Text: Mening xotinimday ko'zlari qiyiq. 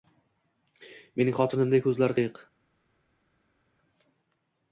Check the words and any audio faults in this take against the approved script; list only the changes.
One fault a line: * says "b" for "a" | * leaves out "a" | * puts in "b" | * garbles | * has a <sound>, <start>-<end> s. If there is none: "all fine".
all fine